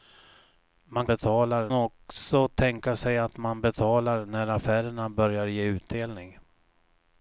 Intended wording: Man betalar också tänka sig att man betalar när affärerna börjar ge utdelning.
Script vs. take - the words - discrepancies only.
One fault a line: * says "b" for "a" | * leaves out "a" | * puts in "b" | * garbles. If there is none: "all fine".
all fine